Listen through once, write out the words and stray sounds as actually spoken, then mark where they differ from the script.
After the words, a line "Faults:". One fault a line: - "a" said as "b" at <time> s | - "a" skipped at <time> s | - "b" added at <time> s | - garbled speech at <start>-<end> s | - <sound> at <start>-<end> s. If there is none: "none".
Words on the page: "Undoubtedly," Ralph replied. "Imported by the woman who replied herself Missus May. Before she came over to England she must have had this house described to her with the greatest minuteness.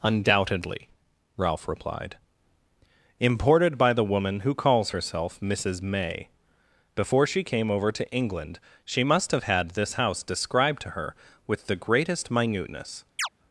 "Undoubtedly," Ralph replied. "Imported by the woman who calls herself Missus May. Before she came over to England she must have had this house described to her with the greatest minuteness.
Faults:
- "replied" said as "calls" at 4.5 s
- chirp at 13.2-13.3 s